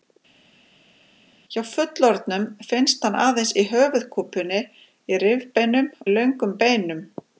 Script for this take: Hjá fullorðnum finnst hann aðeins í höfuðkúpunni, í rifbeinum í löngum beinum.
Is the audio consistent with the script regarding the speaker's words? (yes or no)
yes